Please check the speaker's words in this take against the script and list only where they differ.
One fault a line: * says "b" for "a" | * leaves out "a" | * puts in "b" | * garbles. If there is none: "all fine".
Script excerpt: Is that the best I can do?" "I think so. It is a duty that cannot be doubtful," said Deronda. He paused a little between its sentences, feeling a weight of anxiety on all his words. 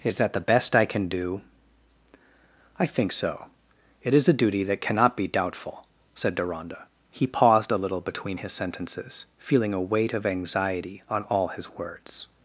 * says "his" for "its"